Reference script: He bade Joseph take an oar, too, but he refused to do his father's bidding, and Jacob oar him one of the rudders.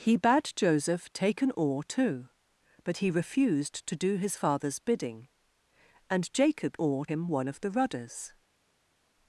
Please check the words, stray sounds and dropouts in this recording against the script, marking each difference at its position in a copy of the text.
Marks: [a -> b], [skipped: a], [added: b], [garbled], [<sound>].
He bade Joseph take an oar, too, but he refused to do his father's bidding, and Jacob oar him one of the rudders.